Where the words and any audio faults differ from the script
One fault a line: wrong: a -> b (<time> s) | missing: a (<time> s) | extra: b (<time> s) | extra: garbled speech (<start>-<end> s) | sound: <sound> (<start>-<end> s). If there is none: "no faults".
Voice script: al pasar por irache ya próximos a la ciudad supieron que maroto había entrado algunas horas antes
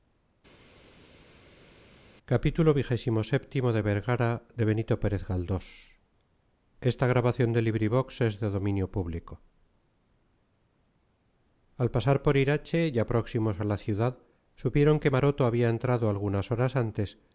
no faults